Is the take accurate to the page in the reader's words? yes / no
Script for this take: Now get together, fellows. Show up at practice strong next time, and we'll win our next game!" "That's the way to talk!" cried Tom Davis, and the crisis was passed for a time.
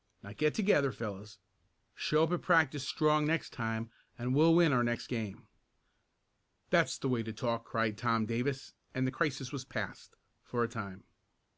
yes